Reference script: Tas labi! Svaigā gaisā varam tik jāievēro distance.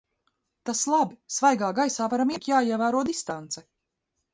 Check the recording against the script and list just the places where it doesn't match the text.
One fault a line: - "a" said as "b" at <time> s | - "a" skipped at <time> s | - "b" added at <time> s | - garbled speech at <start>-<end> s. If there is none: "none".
none